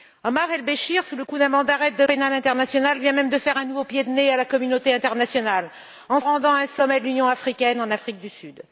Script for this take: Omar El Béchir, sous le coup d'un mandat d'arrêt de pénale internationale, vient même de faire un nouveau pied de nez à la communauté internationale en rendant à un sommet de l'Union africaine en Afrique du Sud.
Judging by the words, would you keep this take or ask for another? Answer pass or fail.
pass